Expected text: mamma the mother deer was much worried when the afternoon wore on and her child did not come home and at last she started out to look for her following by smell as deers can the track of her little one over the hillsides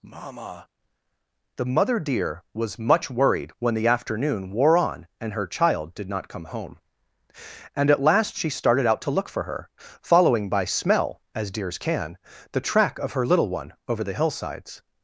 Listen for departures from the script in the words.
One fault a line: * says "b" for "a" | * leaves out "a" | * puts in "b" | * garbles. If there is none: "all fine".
all fine